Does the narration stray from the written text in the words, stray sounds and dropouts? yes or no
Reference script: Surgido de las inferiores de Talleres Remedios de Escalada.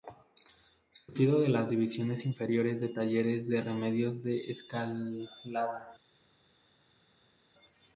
yes